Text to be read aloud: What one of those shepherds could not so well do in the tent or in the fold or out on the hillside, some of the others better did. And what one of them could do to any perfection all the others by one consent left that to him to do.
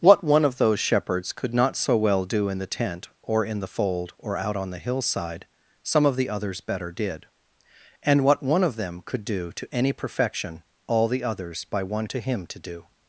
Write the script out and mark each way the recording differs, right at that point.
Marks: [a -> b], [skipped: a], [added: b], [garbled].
What one of those shepherds could not so well do in the tent or in the fold or out on the hillside, some of the others better did. And what one of them could do to any perfection all the others by one [skipped: consent left that] to him to do.